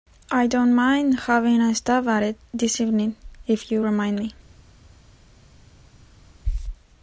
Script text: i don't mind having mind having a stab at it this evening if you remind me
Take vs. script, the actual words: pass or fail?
fail